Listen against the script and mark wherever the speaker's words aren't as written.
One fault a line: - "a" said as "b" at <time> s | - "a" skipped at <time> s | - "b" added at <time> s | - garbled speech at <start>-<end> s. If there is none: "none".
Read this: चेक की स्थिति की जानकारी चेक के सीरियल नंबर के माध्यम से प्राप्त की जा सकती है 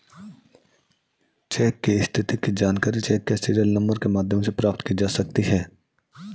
none